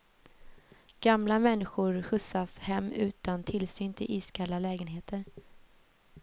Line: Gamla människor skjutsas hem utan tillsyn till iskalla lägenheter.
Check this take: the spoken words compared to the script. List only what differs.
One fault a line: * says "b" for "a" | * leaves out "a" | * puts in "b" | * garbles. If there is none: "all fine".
all fine